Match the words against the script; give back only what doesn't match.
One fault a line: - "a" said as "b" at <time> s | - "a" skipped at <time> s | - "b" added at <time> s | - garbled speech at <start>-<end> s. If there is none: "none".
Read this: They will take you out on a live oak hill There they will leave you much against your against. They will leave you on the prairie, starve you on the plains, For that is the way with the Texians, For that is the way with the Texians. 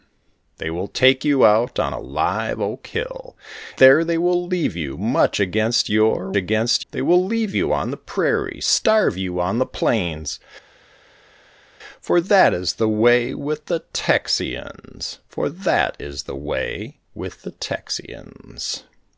none